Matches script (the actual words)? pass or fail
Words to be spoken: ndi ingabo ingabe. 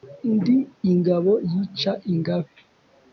fail